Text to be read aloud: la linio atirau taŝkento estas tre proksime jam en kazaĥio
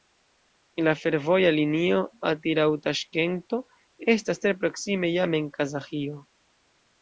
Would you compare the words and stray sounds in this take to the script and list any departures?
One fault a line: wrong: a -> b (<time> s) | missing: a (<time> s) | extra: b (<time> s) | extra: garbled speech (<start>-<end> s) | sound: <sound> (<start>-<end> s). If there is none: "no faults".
extra: fervoja (1.0 s)